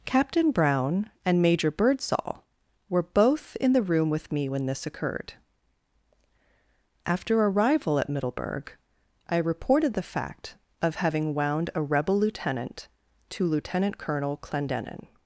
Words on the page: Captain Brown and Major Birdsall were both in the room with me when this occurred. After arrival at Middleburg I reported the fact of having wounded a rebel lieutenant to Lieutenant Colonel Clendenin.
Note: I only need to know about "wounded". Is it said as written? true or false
false